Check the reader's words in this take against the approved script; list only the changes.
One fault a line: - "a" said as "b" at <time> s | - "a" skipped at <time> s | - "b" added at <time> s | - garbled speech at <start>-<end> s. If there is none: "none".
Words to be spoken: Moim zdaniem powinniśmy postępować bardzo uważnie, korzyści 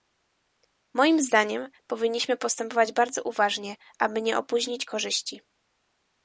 - "aby nie opóźnić" added at 4.0 s